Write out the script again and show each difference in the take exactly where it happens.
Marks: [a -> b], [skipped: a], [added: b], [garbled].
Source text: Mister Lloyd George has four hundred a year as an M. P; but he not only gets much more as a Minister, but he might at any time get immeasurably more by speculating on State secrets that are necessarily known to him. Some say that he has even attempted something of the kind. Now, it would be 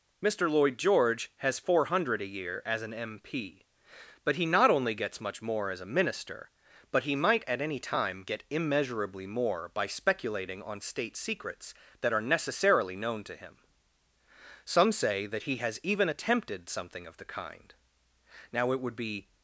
Mister Lloyd George has four hundred a year as an M. P; but he not only gets much more as a Minister, but he might at any time get immeasurably more by speculating on State secrets that are necessarily known to him. Some say that he has even attempted something of the kind. Now, it would be